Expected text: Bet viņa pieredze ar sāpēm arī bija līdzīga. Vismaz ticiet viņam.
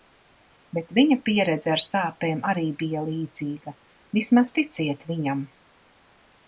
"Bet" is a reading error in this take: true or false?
false